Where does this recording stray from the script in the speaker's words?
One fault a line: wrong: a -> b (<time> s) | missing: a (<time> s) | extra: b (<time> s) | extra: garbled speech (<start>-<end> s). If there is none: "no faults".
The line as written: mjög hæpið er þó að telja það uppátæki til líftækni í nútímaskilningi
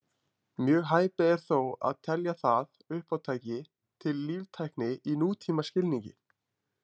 no faults